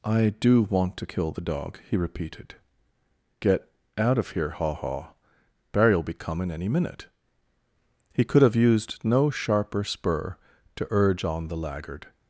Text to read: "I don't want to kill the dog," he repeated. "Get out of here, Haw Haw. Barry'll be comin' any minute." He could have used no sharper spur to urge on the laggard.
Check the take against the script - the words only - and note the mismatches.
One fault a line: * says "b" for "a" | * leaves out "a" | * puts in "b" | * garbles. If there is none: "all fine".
* says "do" for "don't"